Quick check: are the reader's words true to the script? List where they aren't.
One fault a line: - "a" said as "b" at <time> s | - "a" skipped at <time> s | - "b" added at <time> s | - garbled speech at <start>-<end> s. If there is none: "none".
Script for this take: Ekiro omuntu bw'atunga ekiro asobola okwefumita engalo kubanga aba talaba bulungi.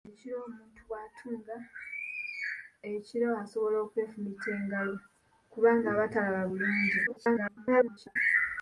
- garbled speech at 7.1-8.2 s